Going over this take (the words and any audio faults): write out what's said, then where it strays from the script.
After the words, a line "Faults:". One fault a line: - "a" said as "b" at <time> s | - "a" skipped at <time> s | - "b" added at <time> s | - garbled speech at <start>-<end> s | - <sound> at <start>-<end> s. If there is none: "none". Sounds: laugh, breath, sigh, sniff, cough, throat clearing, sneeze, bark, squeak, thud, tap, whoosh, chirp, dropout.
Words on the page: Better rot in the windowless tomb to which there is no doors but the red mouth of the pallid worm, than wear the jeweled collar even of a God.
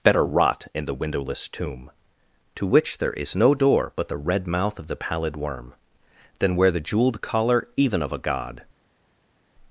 Better rot in the windowless tomb to which there is no door but the red mouth of the pallid worm, than wear the jeweled collar even of a God.
Faults:
- "doors" said as "door" at 3.5 s